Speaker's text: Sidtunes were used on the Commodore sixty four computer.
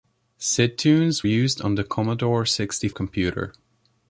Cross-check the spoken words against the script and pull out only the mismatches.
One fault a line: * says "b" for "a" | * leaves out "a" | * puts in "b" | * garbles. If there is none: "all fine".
* leaves out "were"
* leaves out "four"